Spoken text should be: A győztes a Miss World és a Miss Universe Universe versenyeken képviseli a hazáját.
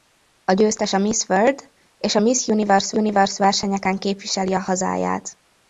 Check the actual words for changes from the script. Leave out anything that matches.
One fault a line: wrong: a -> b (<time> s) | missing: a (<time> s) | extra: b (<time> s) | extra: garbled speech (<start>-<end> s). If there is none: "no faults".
no faults